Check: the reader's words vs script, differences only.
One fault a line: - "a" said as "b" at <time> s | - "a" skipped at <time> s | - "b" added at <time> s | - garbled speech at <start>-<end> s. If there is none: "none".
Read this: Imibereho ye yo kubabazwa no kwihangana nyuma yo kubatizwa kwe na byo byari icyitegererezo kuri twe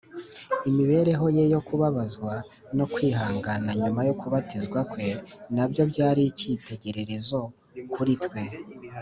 none